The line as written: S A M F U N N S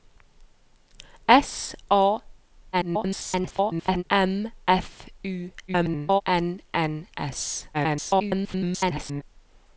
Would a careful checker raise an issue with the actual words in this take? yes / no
yes